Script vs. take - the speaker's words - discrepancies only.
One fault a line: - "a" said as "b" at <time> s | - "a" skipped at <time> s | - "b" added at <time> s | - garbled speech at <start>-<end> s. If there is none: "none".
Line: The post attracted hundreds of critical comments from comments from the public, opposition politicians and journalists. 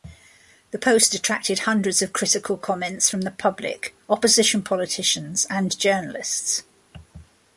- "comments from" skipped at 3.2 s